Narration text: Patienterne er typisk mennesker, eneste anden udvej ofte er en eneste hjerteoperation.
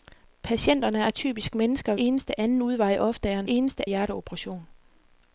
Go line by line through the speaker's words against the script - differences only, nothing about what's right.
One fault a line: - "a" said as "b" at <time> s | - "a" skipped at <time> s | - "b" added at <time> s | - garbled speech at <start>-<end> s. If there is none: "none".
none